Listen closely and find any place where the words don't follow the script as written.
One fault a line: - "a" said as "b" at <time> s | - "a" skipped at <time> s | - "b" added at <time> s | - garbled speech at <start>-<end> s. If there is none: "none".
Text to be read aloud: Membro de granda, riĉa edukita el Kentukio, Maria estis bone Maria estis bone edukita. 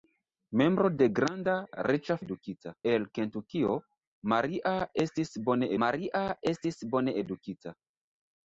none